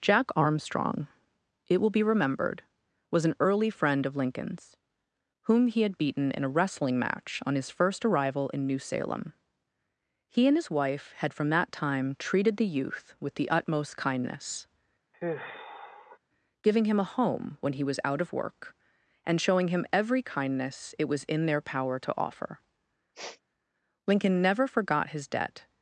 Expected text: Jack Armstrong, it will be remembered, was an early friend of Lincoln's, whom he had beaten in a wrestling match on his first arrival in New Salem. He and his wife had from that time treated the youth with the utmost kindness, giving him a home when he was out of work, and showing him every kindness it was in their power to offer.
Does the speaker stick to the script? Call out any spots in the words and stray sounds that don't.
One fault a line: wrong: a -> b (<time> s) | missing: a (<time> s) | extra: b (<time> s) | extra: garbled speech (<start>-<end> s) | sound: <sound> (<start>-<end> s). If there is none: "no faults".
sound: sigh (15.1-16.2 s)
sound: sniff (23.1-23.4 s)
extra: Lincoln never forgot his debt (24.1 s)